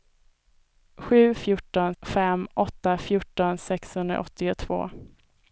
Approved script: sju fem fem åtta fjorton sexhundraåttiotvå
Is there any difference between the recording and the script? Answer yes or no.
yes